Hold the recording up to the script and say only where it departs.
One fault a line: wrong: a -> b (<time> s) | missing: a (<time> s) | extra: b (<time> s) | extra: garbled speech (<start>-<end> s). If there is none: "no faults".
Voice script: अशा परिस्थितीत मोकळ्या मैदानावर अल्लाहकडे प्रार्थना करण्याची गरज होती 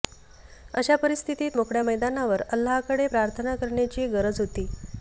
no faults